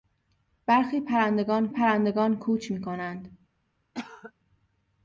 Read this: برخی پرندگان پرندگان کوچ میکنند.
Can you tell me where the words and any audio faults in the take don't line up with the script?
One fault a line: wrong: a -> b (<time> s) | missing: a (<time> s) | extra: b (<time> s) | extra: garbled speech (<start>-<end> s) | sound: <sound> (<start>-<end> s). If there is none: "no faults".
sound: cough (3.9-4.3 s)